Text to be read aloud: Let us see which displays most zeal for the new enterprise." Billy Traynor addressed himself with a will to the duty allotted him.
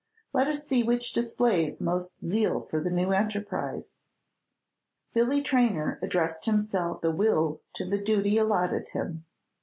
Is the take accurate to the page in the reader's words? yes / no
no